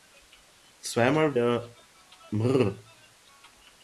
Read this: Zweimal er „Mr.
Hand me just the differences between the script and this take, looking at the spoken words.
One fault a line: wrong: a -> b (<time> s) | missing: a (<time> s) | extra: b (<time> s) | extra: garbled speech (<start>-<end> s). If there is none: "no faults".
no faults